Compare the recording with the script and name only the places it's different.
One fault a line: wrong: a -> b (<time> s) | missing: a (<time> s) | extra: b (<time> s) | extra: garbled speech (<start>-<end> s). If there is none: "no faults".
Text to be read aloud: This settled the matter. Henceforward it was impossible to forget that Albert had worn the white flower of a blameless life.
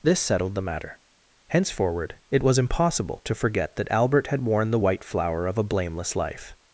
no faults